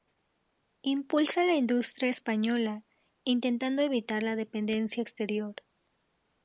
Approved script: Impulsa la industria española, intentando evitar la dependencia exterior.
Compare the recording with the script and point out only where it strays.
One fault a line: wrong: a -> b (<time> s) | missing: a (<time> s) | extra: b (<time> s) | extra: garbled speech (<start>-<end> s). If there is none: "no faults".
no faults